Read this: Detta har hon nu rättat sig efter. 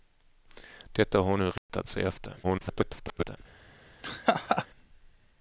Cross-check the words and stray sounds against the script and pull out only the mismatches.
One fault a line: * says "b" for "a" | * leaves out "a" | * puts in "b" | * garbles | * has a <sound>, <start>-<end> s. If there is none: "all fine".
* has a dropout, 1.6-1.7 s
* garbles
* has a laugh, 4.0-4.7 s